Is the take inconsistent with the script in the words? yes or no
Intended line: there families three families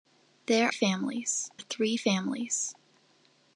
no